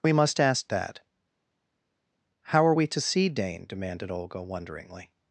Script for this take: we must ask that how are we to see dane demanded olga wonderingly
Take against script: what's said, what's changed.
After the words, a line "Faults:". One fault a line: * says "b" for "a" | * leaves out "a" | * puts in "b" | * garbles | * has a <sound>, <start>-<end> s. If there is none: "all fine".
we must ask that how are we to see dane demanded olga wonderingly
Faults:
all fine